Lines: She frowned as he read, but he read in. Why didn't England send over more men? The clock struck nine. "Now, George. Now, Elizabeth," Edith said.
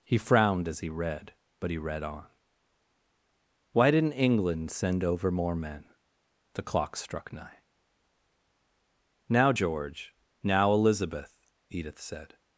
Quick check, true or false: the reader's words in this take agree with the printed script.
false